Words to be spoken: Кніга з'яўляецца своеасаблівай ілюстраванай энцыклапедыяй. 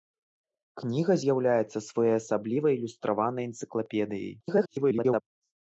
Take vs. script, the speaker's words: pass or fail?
fail